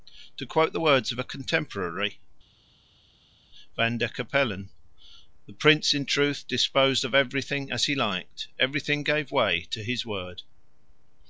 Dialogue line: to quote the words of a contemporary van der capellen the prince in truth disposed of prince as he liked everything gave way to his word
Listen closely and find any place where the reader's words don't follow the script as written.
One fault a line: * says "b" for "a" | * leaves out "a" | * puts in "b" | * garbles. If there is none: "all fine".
* says "everything" for "prince"